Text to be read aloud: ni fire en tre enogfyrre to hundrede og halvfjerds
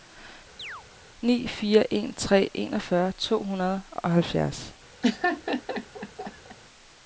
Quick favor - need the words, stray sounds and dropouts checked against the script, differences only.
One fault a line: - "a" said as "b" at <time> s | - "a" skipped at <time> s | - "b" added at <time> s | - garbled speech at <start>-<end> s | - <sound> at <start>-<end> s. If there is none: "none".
- chirp at 0.6-0.8 s
- laugh at 5.0-6.6 s